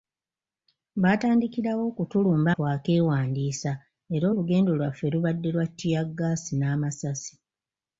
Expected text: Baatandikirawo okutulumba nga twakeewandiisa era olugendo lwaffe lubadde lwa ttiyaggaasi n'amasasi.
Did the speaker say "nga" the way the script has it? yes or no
no